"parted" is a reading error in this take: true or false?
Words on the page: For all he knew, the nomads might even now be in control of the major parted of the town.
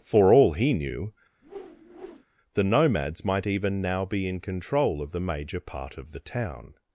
true